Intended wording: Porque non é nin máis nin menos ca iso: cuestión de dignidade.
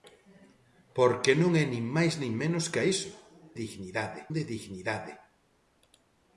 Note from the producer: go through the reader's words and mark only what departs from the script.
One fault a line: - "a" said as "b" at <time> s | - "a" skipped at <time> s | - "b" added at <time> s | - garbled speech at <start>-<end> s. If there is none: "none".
- "cuestión" said as "dignidade" at 3.6 s